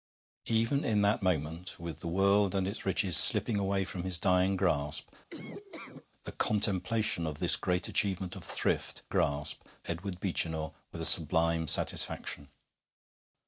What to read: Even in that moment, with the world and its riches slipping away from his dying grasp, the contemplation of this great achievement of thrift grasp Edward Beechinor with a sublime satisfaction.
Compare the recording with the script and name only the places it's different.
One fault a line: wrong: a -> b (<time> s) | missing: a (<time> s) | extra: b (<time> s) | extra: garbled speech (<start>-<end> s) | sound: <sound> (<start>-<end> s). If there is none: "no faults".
sound: laugh (5.3-6.1 s)